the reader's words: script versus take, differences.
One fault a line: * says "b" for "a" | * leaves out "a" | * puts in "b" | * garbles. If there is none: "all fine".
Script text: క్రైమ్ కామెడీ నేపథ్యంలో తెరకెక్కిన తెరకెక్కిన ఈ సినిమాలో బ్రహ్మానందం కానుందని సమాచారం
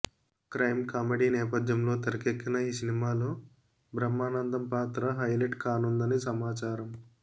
* leaves out "తెరకెక్కిన"
* puts in "పాత్ర హైలైట్"